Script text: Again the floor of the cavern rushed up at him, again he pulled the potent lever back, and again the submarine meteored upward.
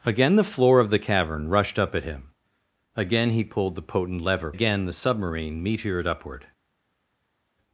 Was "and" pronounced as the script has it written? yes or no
no